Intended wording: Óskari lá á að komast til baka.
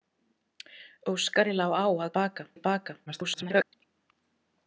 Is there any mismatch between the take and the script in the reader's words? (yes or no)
yes